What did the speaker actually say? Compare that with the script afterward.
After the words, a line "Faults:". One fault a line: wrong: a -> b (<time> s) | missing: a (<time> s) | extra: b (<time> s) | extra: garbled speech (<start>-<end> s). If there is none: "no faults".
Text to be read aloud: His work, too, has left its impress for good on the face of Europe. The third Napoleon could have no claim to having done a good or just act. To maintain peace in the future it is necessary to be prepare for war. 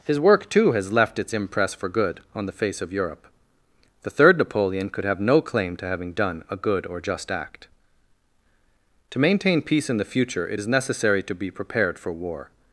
His work, too, has left its impress for good on the face of Europe. The third Napoleon could have no claim to having done a good or just act. To maintain peace in the future it is necessary to be prepared for war.
Faults:
wrong: prepare -> prepared (11.5 s)